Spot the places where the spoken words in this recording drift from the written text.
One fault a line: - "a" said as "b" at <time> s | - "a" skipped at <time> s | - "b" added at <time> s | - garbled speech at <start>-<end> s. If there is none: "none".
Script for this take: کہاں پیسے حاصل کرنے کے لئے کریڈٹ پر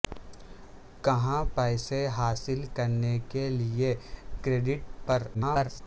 - garbled speech at 5.3-5.8 s